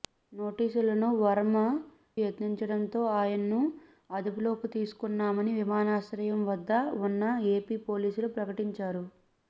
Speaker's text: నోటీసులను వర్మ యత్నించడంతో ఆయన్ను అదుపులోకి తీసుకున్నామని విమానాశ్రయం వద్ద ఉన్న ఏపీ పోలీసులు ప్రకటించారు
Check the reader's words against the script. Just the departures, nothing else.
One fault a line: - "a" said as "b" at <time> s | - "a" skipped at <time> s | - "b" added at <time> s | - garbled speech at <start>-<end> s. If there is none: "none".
none